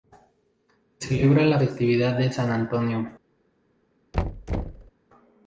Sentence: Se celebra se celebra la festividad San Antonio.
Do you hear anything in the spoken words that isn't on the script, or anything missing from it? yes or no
yes